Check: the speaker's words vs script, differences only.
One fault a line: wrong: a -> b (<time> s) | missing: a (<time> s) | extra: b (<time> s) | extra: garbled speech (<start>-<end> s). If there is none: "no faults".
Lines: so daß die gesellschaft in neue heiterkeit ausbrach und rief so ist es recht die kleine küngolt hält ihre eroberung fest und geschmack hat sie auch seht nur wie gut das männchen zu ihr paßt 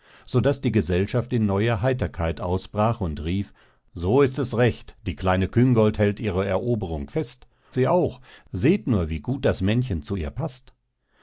missing: und geschmack hat (7.5 s)